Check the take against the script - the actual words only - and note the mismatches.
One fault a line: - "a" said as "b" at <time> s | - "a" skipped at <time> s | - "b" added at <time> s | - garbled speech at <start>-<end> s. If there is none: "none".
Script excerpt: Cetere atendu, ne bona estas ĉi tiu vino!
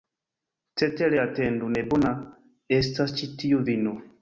none